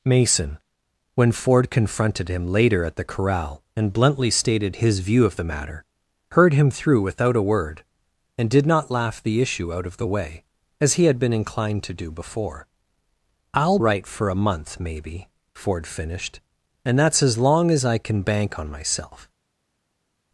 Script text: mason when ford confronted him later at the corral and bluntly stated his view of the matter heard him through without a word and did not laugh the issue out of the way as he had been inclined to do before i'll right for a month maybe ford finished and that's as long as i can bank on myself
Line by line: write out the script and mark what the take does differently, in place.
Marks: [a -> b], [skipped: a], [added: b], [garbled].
mason when ford confronted him later at the corral and bluntly stated his view of the matter heard him through without a word and did not laugh the issue out of the way as he had been inclined to do before i'll right for a month maybe ford finished and that's as long as i can bank on myself